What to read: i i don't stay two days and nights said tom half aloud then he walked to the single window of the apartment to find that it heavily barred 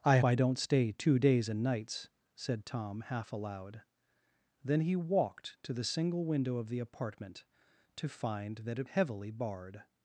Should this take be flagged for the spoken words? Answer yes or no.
no